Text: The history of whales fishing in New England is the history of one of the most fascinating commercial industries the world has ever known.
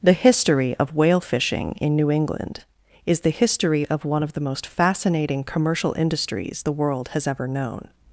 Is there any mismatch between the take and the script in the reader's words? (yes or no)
yes